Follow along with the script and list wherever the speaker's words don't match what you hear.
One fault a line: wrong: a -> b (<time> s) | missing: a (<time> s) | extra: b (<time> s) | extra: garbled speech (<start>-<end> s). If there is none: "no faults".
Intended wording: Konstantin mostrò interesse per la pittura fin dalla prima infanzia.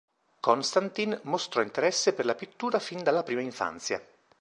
no faults